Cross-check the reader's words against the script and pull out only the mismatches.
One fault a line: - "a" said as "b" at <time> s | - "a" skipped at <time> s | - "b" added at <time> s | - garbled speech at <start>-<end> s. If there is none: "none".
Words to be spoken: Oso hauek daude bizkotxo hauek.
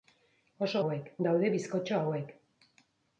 none